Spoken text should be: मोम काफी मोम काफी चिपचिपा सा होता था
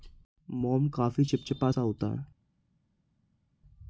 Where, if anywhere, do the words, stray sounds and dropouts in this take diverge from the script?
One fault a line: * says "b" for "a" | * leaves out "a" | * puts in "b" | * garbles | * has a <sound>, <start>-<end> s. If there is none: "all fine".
* leaves out "मोम काफी"
* says "है" for "था"